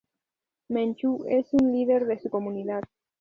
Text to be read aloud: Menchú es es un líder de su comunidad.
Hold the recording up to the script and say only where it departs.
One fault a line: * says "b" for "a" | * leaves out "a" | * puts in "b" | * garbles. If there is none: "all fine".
* leaves out "es"